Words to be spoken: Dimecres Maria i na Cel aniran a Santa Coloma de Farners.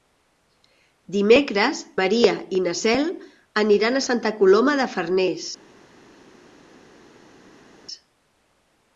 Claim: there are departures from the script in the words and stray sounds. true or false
false